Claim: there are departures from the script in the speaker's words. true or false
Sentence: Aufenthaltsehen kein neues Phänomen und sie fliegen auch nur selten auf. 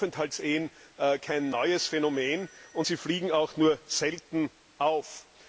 false